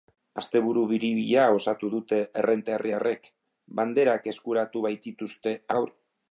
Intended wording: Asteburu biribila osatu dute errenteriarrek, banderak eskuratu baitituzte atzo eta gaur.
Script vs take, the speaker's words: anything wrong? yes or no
yes